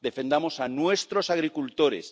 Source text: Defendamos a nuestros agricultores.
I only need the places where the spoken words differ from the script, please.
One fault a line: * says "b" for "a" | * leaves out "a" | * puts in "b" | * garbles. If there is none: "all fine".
all fine